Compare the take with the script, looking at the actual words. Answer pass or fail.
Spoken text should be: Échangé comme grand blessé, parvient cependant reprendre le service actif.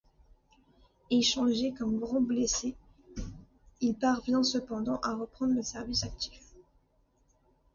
fail